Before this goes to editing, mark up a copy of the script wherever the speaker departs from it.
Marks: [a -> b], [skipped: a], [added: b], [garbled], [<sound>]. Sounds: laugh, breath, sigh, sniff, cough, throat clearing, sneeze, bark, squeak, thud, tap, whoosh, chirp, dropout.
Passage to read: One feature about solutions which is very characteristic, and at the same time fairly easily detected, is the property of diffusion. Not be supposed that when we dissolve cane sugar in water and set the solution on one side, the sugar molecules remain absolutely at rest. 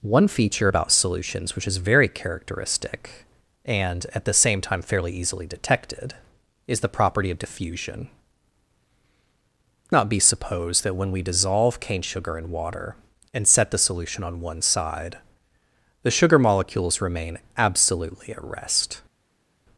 One feature about solutions which is very characteristic, and at the same time fairly easily detected, is the property of diffusion. Not be supposed that when we dissolve cane sugar in water and set the solution on one side, the sugar molecules remain absolutely at rest.